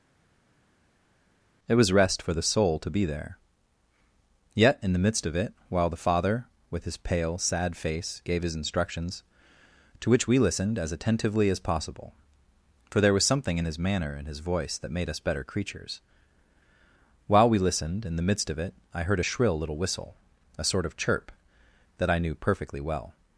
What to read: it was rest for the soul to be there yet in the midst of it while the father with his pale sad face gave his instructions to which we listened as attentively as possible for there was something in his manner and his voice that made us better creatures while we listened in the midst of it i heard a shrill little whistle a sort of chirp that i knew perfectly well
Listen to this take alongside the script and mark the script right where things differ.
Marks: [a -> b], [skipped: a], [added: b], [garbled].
it was rest for the soul to be there yet in the midst of it while the father with his pale sad face gave his instructions to which we listened as attentively as possible for there was something in his manner and his voice that made us better creatures while we listened in the midst of it i heard a shrill little whistle a sort of chirp that i knew perfectly well